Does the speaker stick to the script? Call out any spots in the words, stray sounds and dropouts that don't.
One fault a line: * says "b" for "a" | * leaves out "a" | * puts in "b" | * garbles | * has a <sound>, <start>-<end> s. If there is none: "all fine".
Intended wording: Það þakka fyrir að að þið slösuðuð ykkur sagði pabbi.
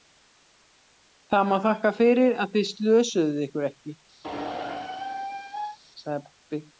* puts in "má"
* leaves out "að"
* puts in "ekki"
* has a squeak, 4.2-5.8 s